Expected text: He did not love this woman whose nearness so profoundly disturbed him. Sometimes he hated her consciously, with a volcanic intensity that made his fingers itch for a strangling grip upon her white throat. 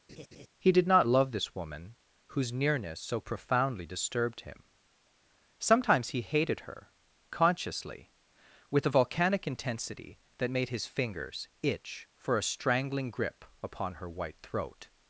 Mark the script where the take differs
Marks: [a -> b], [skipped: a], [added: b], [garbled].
He did not love this woman whose nearness so profoundly disturbed him. Sometimes he hated her consciously, with a volcanic intensity that made his fingers itch for a strangling grip upon her white throat.